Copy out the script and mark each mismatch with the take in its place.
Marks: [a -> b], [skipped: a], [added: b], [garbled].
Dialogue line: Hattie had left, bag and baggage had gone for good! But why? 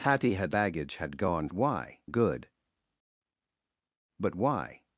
Hattie had [skipped: left, bag and] baggage had gone [for -> why] good! But why?